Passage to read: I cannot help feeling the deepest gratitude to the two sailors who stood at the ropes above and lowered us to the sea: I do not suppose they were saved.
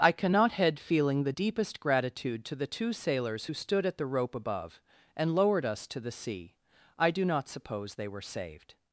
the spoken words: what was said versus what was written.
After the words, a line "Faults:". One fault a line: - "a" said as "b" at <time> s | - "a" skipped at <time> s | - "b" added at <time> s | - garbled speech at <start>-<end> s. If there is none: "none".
I cannot head feeling the deepest gratitude to the two sailors who stood at the rope above and lowered us to the sea: I do not suppose they were saved.
Faults:
- "help" said as "head" at 0.5 s
- "ropes" said as "rope" at 4.1 s